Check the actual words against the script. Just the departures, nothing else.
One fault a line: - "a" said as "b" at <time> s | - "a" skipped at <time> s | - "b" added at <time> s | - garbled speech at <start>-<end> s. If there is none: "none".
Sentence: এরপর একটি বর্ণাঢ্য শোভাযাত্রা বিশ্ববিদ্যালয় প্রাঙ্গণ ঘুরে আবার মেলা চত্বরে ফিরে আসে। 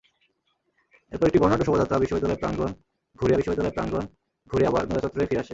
- "বিশ্ববিদ্যালয় প্রাঙ্গণ ঘুরে" added at 3.4 s